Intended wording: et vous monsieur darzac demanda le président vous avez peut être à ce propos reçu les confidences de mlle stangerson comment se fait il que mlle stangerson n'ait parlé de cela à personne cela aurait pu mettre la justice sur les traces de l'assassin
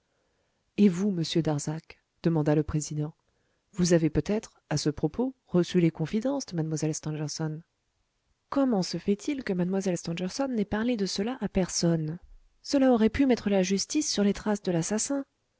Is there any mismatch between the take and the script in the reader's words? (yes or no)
no